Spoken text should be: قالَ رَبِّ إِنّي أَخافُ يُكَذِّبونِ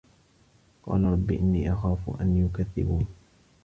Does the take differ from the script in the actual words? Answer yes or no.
yes